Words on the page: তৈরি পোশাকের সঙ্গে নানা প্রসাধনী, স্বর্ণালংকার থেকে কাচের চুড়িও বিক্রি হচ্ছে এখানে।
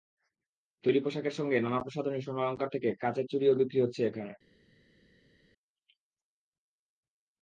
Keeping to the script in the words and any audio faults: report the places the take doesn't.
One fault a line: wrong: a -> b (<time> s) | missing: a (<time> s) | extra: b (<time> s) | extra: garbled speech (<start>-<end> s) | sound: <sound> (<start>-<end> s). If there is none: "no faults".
no faults